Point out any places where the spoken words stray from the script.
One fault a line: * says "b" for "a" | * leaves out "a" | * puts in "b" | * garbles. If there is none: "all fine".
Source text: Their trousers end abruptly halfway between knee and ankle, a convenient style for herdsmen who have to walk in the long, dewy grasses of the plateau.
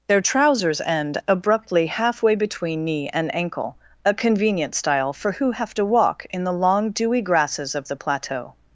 * leaves out "herdsmen"